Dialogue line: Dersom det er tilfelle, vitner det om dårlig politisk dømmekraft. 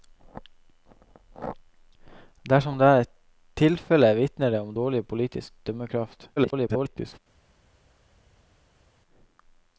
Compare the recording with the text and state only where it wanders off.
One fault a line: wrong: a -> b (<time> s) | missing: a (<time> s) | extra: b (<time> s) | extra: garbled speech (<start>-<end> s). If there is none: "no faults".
extra: garbled speech (6.4-7.2 s)